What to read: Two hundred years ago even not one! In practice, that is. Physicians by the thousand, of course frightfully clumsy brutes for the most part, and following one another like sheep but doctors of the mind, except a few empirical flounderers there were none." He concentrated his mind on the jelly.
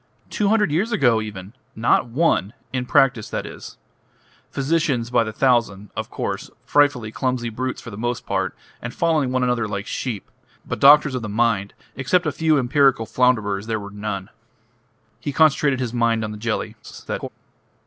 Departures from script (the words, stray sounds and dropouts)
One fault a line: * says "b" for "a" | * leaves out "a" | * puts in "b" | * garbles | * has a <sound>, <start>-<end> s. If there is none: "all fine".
* garbles